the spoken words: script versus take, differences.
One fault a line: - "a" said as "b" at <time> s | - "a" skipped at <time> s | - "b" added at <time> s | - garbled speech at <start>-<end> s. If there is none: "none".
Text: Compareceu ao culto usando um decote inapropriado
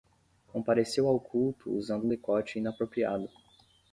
none